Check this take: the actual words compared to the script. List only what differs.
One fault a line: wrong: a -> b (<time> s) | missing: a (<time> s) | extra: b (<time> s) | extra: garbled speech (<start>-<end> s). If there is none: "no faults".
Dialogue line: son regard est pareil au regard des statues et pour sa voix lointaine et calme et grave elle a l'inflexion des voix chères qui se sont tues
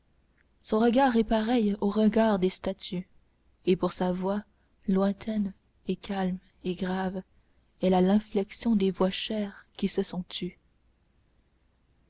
no faults